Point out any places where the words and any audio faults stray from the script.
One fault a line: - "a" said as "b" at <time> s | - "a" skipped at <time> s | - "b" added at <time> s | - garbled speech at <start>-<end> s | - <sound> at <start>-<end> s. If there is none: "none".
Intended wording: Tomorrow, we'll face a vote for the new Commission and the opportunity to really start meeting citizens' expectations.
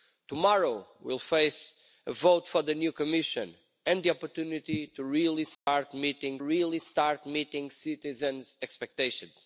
- dropout at 5.5-5.7 s
- "really start meeting" added at 6.4 s